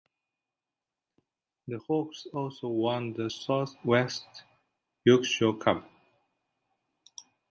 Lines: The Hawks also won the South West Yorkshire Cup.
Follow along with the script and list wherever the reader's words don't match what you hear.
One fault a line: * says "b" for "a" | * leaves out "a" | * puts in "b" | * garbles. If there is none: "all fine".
all fine